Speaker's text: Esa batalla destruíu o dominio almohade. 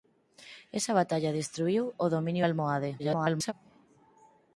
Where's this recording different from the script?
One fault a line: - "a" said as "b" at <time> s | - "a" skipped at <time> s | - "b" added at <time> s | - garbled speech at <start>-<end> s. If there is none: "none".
- garbled speech at 3.0-3.5 s